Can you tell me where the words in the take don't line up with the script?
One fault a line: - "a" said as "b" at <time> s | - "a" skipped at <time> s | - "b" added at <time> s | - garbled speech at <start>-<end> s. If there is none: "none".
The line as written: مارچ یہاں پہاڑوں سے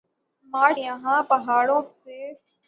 none